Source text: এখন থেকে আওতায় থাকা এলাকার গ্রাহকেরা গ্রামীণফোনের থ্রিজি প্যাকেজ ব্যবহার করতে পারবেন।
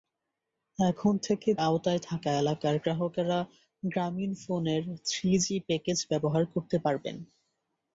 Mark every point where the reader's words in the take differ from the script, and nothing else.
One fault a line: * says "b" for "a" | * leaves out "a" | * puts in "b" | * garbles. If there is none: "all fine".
all fine